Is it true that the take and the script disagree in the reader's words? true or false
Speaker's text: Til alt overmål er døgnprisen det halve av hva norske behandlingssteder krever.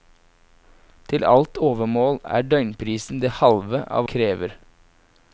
true